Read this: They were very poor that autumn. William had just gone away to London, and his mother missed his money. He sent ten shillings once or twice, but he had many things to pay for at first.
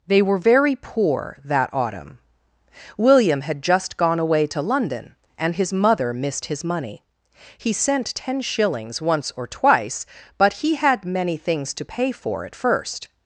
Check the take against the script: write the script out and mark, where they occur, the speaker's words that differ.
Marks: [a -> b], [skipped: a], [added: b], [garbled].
They were very poor that autumn. William had just gone away to London, and his mother missed his money. He sent ten shillings once or twice, but he had many things to pay for at first.